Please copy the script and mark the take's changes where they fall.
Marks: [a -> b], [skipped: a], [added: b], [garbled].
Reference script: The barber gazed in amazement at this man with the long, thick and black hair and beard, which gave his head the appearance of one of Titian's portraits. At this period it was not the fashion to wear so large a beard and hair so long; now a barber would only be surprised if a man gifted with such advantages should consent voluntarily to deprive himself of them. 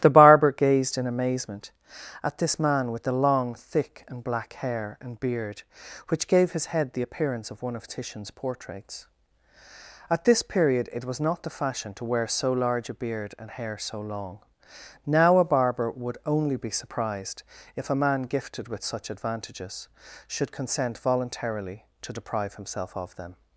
The barber gazed in amazement at this man with the long, thick and black hair and beard, which gave his head the appearance of one of Titian's portraits. At this period it was not the fashion to wear so large a beard and hair so long; now a barber would only be surprised if a man gifted with such advantages should consent voluntarily to deprive himself of them.